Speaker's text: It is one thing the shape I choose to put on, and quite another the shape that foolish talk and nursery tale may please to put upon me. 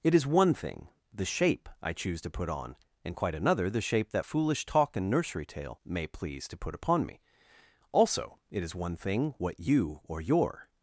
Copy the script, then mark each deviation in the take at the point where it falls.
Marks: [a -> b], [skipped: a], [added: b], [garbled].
It is one thing the shape I choose to put on, and quite another the shape that foolish talk and nursery tale may please to put upon me. [added: Also it is one thing what you or your]